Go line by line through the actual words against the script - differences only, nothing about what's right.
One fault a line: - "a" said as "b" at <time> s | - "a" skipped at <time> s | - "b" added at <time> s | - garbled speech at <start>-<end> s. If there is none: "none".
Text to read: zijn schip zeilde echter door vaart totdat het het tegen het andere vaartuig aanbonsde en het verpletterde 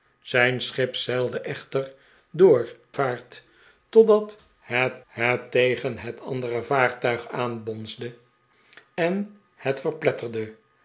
none